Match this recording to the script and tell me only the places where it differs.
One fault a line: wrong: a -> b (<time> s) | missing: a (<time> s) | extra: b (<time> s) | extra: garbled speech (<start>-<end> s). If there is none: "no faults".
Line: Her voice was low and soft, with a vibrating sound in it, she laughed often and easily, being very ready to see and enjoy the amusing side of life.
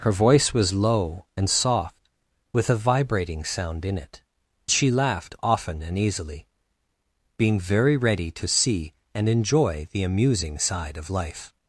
no faults